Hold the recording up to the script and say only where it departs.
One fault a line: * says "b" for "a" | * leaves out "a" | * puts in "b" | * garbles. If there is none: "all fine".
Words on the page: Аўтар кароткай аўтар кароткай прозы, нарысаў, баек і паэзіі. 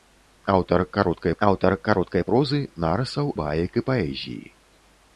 all fine